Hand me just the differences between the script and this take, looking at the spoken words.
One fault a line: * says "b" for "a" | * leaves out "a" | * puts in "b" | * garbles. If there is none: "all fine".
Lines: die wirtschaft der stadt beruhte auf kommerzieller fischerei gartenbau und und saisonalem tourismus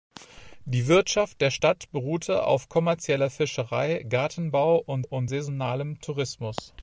all fine